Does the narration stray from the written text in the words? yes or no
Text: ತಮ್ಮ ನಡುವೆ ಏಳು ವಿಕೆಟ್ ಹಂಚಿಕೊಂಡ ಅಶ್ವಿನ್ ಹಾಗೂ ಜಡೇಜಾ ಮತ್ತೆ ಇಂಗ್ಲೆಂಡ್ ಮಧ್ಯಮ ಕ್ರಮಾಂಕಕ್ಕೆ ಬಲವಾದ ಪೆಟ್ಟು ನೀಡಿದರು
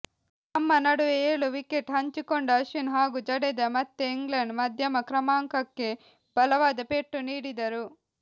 no